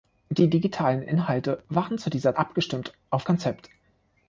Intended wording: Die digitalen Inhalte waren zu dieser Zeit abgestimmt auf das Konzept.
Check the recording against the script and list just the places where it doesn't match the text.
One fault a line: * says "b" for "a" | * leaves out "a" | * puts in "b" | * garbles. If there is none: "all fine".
* leaves out "Zeit"
* leaves out "das"